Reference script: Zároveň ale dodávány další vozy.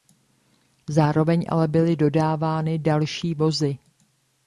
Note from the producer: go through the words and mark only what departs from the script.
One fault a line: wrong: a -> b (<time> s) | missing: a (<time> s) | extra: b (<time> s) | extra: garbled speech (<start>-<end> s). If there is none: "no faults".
extra: byly (1.7 s)